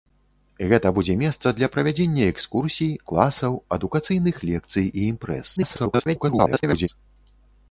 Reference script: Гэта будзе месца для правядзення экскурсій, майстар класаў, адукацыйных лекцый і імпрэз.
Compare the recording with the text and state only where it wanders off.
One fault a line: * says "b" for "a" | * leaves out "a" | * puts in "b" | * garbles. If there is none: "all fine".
* leaves out "майстар"
* garbles